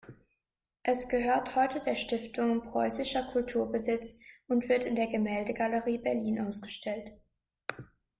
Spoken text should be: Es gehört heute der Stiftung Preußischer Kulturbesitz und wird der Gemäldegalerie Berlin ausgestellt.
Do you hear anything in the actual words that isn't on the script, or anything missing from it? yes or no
yes